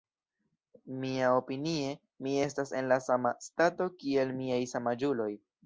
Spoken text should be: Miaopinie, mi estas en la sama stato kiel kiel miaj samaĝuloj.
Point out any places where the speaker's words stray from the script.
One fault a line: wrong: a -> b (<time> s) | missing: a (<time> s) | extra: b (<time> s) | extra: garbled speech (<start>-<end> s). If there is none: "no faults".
missing: kiel (4.4 s)